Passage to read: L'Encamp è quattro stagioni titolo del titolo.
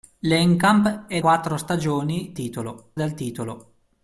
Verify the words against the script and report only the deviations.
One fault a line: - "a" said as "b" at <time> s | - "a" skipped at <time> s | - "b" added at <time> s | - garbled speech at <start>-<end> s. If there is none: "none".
none